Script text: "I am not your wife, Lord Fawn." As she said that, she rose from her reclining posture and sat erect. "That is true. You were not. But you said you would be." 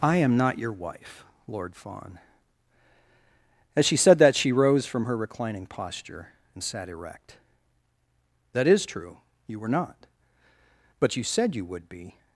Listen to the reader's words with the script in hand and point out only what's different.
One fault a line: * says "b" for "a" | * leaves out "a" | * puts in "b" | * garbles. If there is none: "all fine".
all fine